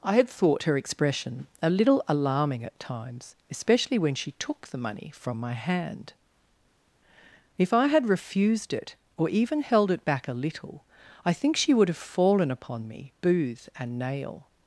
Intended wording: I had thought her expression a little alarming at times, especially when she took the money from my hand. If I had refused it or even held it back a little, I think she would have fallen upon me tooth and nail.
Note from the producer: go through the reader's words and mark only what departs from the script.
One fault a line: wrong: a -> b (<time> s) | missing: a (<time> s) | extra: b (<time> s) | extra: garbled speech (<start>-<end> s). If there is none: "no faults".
wrong: tooth -> booth (13.2 s)